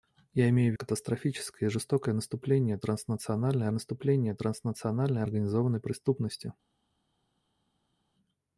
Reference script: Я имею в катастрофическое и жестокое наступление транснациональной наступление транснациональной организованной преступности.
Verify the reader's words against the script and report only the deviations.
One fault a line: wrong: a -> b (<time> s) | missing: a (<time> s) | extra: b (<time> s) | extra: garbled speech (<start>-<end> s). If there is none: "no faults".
no faults